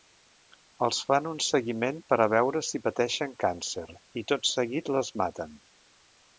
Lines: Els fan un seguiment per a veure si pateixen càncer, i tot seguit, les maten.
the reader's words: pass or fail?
pass